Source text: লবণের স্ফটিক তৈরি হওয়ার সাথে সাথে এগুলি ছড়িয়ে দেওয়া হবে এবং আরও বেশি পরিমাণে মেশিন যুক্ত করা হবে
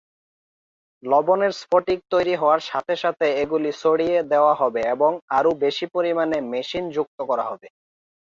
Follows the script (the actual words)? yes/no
yes